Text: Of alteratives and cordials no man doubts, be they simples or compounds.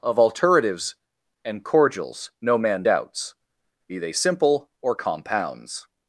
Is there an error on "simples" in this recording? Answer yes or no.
yes